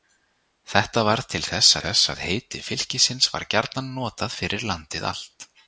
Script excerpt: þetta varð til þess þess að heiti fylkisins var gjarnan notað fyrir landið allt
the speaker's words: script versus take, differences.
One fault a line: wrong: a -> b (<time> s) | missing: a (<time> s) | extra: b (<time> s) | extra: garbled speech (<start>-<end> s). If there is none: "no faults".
no faults